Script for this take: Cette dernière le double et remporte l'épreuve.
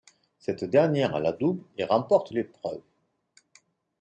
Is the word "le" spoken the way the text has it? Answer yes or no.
no